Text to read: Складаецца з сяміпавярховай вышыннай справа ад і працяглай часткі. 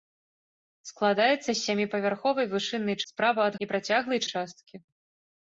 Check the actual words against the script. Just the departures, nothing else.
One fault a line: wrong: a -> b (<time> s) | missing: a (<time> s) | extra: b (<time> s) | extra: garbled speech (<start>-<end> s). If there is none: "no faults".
no faults